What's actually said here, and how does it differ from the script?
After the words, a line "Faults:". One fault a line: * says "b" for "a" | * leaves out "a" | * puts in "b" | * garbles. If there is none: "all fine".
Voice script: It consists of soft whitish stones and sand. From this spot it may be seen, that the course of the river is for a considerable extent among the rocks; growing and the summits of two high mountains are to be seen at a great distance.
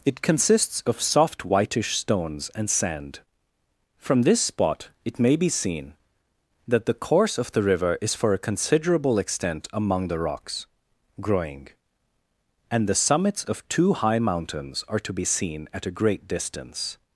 It consists of soft whitish stones and sand. From this spot it may be seen, that the course of the river is for a considerable extent among the rocks; growing and the summits of two high mountains are to be seen at a great distance.
Faults:
all fine